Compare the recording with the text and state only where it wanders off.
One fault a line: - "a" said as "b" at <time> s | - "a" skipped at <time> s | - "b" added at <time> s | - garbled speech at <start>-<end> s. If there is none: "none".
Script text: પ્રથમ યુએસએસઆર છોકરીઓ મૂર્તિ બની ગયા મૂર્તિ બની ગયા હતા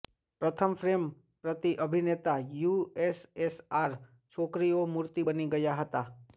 - "યુએસએસઆર છોકરીઓ મૂર્તિ બની ગયા" said as "ફ્રેમ પ્રતિ અભિનેતા યુએસએસઆર છોકરીઓ" at 0.8 s